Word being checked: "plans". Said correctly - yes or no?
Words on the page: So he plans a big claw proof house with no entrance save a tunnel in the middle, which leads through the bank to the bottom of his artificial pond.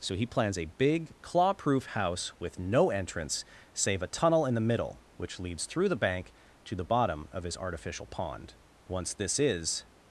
yes